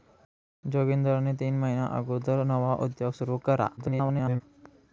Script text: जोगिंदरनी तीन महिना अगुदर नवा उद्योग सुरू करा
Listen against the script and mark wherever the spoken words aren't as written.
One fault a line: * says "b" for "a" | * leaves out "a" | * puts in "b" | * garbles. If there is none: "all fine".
* garbles